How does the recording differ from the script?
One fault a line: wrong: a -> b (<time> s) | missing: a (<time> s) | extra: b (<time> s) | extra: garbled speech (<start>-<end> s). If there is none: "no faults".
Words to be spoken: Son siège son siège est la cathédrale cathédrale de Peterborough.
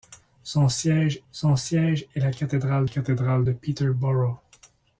no faults